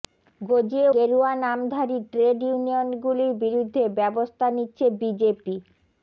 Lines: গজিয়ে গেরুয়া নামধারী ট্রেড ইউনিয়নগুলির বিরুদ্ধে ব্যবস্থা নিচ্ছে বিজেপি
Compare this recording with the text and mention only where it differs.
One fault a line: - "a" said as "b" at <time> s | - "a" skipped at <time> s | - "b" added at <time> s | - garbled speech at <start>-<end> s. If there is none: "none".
none